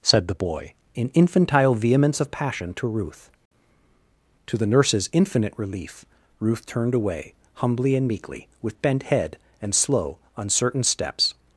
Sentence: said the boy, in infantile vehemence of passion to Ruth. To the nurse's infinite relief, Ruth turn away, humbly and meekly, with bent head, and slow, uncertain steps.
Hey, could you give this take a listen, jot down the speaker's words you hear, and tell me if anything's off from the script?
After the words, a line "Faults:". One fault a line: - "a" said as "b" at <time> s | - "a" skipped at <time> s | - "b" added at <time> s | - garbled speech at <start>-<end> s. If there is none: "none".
said the boy, in infantile vehemence of passion to Ruth. To the nurse's infinite relief, Ruth turned away, humbly and meekly, with bent head, and slow, uncertain steps.
Faults:
- "turn" said as "turned" at 6.7 s